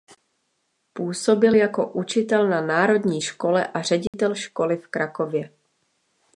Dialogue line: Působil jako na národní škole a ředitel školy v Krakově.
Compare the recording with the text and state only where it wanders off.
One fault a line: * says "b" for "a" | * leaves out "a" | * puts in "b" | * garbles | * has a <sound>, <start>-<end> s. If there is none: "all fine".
* puts in "učitel"
* has a dropout, 4.1-4.1 s